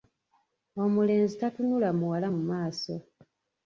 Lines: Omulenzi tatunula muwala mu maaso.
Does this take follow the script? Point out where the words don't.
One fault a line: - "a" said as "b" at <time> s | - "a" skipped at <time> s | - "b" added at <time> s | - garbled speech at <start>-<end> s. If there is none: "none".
none